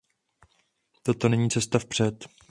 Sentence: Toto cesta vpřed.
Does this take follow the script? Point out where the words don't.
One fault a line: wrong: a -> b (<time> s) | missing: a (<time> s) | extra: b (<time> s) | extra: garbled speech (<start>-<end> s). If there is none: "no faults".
extra: není (1.3 s)